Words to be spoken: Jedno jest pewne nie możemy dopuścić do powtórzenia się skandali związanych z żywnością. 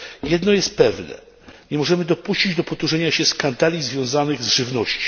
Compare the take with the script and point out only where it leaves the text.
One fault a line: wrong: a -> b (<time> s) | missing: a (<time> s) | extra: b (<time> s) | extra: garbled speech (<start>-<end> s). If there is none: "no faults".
no faults